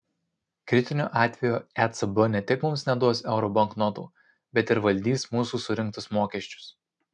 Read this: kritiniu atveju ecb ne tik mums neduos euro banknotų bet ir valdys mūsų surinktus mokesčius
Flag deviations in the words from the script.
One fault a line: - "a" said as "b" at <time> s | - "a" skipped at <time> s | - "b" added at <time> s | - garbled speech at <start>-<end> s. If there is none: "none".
none